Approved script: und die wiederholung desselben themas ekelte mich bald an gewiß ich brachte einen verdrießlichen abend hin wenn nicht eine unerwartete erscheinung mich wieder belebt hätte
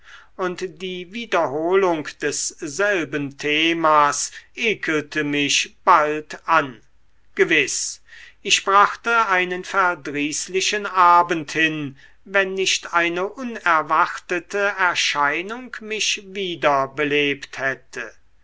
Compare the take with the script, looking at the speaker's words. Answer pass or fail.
pass